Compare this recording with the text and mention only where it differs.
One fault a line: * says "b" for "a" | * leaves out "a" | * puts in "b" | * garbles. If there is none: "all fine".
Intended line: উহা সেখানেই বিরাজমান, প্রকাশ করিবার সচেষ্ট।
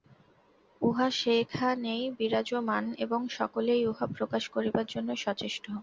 * puts in "এবং সকলেই উহা"
* puts in "জন্য"